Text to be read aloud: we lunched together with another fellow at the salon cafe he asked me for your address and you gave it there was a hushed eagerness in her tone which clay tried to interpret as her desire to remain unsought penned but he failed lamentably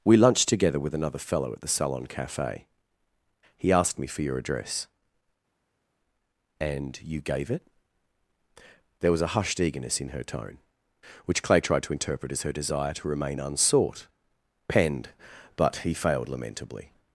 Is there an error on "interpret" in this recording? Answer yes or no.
no